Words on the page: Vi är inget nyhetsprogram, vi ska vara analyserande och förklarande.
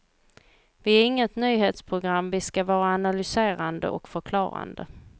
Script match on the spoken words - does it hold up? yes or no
yes